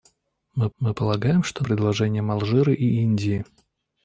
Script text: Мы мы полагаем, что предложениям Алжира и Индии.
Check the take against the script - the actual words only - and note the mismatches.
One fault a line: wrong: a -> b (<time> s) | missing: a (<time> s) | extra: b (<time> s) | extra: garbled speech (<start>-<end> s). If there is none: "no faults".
no faults